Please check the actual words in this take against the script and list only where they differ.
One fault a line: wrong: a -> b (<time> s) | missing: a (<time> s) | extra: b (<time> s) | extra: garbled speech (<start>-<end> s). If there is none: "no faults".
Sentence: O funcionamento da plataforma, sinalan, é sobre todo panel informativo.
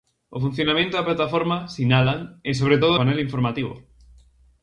no faults